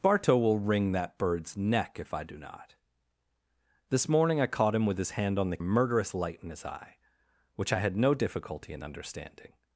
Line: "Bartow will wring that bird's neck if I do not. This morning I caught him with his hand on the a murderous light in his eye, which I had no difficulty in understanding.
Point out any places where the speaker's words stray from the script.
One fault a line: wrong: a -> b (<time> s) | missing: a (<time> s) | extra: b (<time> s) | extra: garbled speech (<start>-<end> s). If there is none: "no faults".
no faults